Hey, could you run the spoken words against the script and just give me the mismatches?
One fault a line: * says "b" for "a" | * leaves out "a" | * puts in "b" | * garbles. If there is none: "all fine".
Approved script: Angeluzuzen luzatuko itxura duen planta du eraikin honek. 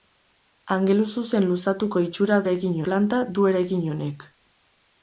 * says "eraikin" for "duen"